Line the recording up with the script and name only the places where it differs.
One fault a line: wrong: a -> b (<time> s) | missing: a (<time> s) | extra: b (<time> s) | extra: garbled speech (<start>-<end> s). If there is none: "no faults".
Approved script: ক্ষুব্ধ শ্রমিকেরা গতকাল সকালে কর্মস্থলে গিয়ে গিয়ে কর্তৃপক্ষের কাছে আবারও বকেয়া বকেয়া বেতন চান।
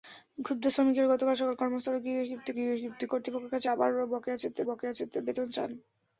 no faults